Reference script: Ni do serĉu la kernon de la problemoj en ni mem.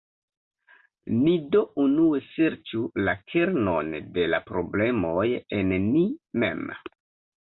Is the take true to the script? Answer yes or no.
no